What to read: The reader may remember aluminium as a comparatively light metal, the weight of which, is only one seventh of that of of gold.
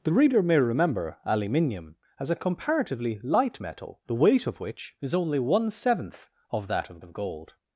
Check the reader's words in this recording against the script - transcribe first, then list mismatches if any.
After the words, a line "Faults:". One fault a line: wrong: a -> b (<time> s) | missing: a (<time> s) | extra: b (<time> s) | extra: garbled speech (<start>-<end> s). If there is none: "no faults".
The reader may remember aluminium as a comparatively light metal, the weight of which, is only one seventh of that of of gold.
Faults:
no faults